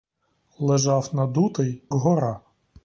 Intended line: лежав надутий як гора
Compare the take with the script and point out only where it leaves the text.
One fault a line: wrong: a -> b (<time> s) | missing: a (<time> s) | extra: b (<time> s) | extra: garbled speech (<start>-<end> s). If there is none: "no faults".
missing: як (1.8 s)